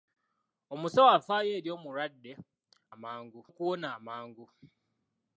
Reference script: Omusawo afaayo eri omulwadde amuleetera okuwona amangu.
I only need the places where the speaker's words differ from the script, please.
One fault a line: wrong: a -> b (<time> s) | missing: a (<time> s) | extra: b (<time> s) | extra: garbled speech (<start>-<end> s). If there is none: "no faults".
wrong: amuleetera -> amangu (2.9 s)